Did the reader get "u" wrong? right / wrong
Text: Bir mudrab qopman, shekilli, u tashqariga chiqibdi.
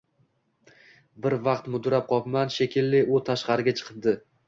right